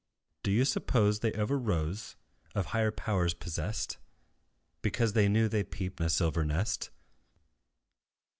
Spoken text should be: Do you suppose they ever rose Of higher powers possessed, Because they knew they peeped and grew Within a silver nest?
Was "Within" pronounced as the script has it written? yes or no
no